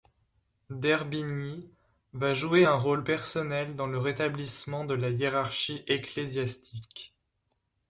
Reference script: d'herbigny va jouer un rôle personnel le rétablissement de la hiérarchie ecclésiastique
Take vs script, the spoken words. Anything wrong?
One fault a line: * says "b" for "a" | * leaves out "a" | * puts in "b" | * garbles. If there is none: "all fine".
* puts in "dans"